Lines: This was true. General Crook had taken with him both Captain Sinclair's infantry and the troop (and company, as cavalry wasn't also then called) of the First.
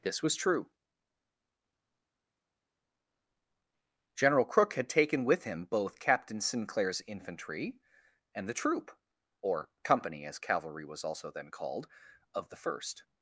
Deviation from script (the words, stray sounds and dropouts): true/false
true